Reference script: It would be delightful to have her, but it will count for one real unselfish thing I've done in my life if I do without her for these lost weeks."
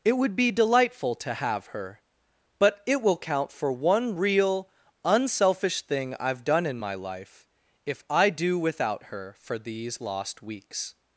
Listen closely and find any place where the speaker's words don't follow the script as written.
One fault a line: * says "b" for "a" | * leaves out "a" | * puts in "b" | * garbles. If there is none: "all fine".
all fine